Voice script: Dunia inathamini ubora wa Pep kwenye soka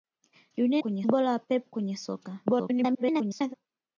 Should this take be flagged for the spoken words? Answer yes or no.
yes